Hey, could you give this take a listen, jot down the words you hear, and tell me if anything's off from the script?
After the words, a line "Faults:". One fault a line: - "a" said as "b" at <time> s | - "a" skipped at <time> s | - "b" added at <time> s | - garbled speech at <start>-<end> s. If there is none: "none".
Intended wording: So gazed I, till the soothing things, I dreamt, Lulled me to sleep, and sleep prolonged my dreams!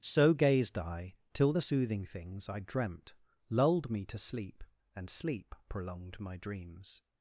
So gazed I, till the soothing things, I dreamt, Lulled me to sleep, and sleep prolonged my dreams!
Faults:
none